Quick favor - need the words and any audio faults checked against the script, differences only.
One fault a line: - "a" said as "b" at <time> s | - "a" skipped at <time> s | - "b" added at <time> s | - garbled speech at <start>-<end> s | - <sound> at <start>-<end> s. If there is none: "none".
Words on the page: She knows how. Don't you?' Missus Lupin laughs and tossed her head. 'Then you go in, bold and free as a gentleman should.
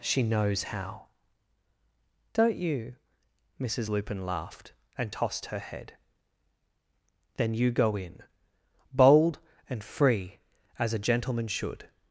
- "laughs" said as "laughed" at 4.2 s